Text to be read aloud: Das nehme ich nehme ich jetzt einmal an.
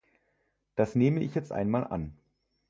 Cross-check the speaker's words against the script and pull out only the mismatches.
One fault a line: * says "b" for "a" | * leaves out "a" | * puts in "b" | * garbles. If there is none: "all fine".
* leaves out "nehme ich"